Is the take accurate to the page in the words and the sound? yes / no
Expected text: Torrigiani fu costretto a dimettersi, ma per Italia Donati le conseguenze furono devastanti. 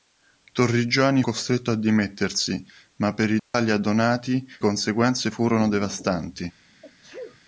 no